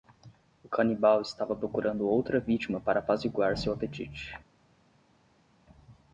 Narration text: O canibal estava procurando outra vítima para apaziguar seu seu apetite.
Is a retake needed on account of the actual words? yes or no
yes